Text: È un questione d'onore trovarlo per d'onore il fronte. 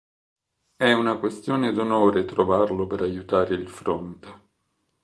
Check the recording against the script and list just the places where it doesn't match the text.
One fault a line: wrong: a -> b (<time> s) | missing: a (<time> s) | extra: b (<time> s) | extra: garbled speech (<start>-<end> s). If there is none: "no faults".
wrong: un -> una (0.9 s)
wrong: d'onore -> aiutare (3.0 s)